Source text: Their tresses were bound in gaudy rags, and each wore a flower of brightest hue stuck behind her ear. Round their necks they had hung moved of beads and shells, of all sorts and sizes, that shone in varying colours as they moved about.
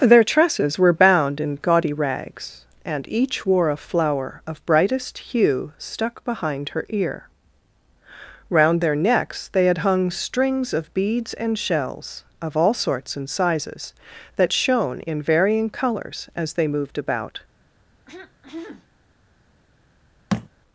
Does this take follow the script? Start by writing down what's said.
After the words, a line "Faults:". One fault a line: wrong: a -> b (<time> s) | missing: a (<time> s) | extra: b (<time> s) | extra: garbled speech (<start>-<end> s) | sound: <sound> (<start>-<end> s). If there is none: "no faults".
Their tresses were bound in gaudy rags, and each wore a flower of brightest hue stuck behind her ear. Round their necks they had hung strings of beads and shells, of all sorts and sizes, that shone in varying colours as they moved about.
Faults:
wrong: moved -> strings (10.1 s)
sound: throat clearing (18.1-18.9 s)
sound: thud (20.3-20.5 s)